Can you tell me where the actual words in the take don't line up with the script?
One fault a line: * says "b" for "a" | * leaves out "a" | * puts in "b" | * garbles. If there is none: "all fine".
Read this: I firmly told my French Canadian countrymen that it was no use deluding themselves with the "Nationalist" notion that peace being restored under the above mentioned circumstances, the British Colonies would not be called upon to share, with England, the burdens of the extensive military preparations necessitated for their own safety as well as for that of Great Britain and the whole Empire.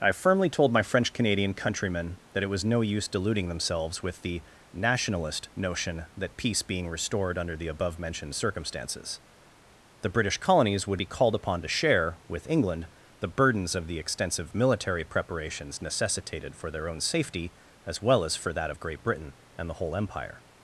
* leaves out "not"